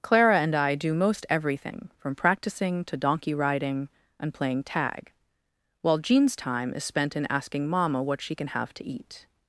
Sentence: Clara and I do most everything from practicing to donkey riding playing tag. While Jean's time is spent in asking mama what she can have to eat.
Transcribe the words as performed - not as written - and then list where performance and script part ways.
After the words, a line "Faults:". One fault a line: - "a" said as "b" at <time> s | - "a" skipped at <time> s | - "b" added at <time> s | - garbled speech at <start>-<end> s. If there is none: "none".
Clara and I do most everything from practicing to donkey riding and playing tag. While Jean's time is spent in asking mama what she can have to eat.
Faults:
- "and" added at 4.2 s